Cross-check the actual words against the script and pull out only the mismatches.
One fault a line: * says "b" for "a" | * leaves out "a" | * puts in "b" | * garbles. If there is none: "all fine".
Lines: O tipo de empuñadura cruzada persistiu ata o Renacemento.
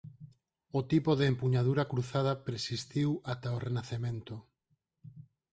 all fine